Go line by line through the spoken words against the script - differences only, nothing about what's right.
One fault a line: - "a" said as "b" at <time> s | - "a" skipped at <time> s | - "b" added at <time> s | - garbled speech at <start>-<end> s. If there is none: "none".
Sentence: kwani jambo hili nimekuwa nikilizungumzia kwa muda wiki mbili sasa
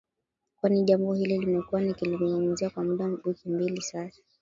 none